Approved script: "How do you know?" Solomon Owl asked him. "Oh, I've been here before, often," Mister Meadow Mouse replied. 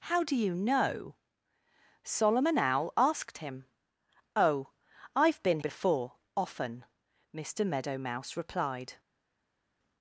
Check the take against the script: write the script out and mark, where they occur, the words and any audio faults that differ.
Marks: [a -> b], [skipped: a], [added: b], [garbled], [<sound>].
"How do you know?" Solomon Owl asked him. "Oh, I've been [skipped: here] before, often," Mister Meadow Mouse replied.